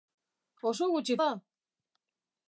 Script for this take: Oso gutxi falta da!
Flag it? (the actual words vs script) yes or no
yes